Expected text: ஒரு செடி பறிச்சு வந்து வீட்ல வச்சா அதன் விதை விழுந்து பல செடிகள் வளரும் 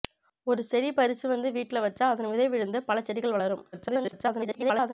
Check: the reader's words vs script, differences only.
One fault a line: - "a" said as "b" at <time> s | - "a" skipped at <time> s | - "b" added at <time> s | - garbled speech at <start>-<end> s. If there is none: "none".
- garbled speech at 3.7-4.9 s